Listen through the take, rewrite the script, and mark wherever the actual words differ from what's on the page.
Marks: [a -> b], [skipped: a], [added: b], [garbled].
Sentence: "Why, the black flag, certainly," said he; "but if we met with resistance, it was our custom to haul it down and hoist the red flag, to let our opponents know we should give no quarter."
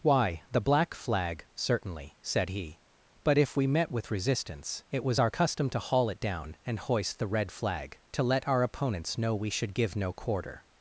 "Why, the black flag, certainly," said he; "but if we met with resistance, it was our custom to haul it down and hoist the red flag, to let our opponents know we should give no quarter."